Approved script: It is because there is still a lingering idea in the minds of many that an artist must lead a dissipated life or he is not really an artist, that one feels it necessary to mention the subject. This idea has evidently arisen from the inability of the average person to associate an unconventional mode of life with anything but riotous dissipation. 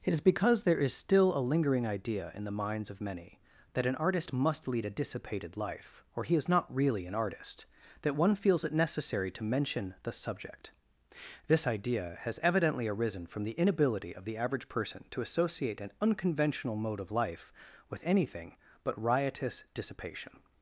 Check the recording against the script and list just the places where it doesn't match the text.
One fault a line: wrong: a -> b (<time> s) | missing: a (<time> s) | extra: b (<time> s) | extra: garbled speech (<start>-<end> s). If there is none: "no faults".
no faults